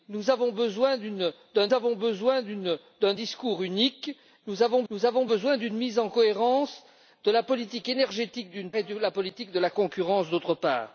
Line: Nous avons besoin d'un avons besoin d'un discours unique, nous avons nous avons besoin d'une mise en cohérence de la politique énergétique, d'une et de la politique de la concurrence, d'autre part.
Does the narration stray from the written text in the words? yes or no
no